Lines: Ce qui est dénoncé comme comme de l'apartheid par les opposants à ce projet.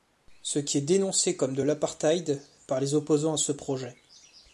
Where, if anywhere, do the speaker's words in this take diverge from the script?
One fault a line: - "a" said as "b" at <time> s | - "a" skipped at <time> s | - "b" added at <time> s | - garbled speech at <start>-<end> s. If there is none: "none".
- "comme" skipped at 1.5 s